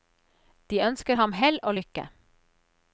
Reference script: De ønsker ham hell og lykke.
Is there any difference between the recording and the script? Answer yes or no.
no